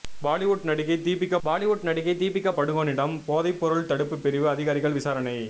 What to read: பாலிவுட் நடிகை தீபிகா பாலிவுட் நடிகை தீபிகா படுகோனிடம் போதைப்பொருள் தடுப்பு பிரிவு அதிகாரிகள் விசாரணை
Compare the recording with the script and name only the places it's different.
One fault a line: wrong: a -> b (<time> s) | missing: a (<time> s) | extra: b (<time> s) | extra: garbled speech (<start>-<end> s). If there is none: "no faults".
no faults